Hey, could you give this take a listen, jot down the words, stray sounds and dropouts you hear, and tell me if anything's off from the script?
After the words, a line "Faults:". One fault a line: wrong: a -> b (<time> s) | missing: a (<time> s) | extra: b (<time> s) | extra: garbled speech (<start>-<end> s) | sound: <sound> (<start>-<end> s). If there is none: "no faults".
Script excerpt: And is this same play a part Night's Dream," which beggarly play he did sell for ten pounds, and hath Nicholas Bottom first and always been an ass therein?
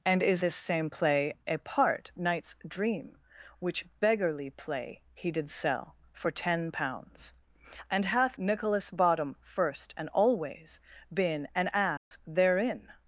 And is this same play a part Night's Dream," which beggarly play he did sell for ten pounds, and hath Nicholas Bottom first and always been an ass therein?
Faults:
sound: dropout (12.0-12.1 s)